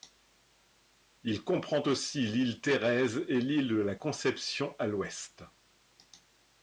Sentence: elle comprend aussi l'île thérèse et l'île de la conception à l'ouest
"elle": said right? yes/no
no